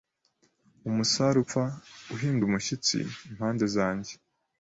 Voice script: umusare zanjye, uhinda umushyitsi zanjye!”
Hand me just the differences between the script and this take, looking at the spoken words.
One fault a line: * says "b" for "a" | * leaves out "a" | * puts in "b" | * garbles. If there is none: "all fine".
* says "upfa" for "zanjye"
* puts in "impande"